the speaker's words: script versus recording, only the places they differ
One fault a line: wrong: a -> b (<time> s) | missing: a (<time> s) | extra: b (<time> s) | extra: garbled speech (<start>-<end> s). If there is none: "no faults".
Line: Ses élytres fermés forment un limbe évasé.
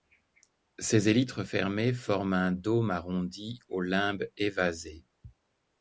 extra: dôme arrondi au (2.5 s)